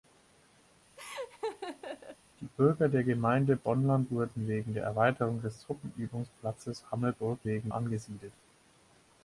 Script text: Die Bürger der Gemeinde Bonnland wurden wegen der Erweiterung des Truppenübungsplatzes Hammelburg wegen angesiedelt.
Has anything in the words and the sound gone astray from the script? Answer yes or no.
yes